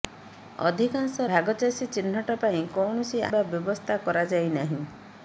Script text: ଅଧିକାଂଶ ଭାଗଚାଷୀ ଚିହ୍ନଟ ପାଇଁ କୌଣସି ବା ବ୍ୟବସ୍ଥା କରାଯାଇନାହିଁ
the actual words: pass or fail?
pass